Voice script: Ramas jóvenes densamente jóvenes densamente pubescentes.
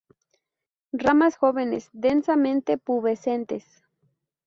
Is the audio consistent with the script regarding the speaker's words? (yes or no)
no